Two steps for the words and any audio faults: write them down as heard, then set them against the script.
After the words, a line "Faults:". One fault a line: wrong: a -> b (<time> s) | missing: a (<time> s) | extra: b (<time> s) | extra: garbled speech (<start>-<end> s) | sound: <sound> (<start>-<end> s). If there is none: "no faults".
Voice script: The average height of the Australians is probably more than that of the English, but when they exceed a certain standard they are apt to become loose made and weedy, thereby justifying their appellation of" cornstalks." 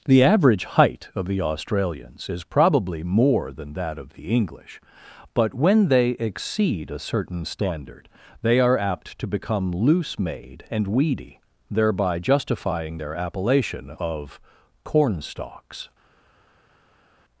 The average height of the Australians is probably more than that of the English, but when they exceed a certain standard they are apt to become loose made and weedy, thereby justifying their appellation of" cornstalks."
Faults:
no faults